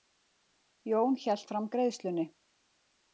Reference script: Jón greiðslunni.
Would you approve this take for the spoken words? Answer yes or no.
no